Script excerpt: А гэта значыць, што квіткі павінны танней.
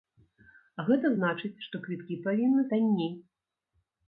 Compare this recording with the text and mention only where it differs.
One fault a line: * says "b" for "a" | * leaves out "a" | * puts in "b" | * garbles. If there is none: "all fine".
all fine